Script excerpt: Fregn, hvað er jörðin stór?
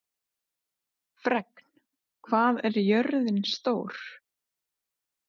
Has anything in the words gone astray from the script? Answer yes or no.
no